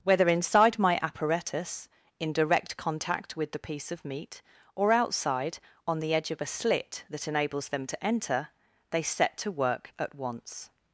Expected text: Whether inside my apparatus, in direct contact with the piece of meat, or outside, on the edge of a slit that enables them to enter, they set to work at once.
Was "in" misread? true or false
false